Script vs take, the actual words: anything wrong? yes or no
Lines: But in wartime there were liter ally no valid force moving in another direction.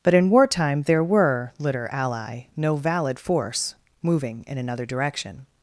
no